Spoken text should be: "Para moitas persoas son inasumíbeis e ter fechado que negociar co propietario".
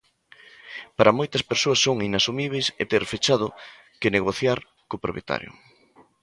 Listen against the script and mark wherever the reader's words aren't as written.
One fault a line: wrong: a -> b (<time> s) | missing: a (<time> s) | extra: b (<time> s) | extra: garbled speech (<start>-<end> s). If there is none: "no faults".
no faults